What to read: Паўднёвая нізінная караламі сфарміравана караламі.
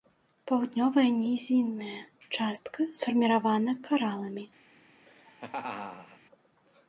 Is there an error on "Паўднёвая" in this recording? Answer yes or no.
no